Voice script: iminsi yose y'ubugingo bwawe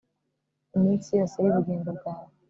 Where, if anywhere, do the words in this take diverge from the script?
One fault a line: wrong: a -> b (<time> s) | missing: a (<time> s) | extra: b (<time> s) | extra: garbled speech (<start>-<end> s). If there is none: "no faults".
no faults